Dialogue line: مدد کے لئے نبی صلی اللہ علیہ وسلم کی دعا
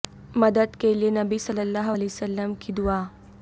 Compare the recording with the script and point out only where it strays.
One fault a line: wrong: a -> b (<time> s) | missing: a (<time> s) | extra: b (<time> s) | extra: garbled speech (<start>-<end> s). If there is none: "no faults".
no faults